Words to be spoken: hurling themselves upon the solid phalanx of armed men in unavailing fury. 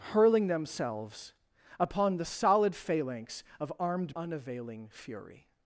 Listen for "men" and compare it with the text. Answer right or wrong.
wrong